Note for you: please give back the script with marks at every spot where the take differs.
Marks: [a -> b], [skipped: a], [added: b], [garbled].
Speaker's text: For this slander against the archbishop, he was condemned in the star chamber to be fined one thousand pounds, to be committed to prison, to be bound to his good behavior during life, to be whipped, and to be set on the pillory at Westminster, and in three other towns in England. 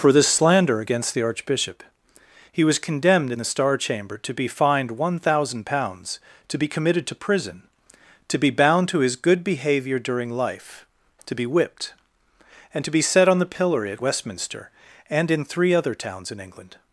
For this slander against the archbishop, he was condemned in the star chamber to be fined one thousand pounds, to be committed to prison, to be bound to his good behavior during life, to be whipped, and to be set on the pillory at Westminster, and in three other towns in England.